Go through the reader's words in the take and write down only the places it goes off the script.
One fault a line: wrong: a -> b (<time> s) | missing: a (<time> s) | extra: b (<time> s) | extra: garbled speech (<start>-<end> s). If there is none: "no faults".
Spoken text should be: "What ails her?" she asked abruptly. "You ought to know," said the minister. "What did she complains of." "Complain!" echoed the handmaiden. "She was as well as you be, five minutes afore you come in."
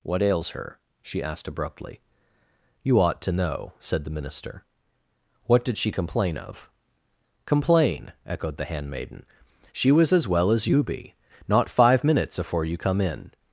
wrong: complains -> complain (5.9 s)
extra: not (11.5 s)